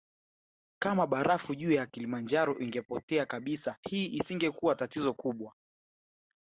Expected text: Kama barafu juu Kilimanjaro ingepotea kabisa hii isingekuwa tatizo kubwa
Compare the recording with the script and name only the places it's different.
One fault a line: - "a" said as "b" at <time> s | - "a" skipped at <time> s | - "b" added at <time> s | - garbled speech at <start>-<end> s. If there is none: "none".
- "ya" added at 1.7 s